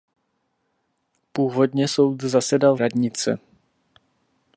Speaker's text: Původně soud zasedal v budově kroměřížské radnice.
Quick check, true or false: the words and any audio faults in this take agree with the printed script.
false